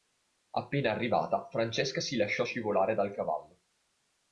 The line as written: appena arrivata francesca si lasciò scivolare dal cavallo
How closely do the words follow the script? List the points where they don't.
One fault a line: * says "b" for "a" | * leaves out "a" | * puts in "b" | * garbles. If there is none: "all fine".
all fine